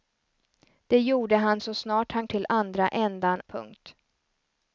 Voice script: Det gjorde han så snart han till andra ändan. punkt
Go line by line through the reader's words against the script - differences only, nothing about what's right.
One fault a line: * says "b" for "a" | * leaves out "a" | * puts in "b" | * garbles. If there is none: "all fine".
all fine